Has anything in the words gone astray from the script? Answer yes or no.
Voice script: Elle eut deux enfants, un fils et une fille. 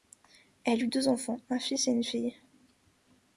no